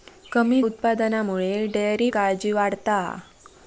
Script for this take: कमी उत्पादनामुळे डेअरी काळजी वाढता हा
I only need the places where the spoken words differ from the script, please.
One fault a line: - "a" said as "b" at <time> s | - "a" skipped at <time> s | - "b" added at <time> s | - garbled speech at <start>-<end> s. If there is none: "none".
none